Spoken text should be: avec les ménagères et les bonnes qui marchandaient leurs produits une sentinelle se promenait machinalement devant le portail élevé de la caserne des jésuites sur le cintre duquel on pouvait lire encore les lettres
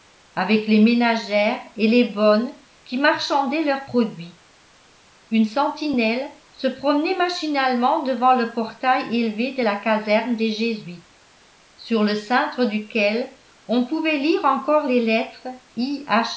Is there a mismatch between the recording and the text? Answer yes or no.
no